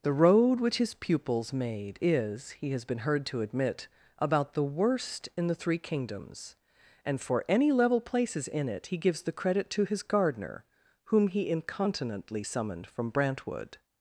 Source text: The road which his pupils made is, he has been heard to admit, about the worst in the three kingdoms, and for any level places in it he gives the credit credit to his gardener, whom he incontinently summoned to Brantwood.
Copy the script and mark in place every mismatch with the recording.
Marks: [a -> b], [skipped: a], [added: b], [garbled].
The road which his pupils made is, he has been heard to admit, about the worst in the three kingdoms, and for any level places in it he gives the credit [skipped: credit] to his gardener, whom he incontinently summoned [to -> from] Brantwood.